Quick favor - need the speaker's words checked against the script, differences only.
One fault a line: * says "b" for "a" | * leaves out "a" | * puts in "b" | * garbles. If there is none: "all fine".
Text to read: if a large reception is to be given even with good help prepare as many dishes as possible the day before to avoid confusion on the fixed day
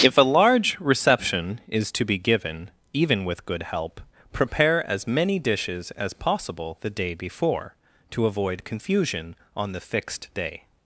all fine